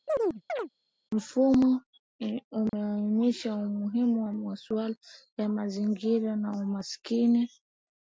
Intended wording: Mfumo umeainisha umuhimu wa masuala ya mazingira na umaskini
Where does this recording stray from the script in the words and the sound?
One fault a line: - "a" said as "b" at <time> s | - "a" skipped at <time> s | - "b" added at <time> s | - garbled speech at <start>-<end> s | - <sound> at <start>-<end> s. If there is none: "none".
- chirp at 0.1-0.7 s
- dropout at 2.7-2.7 s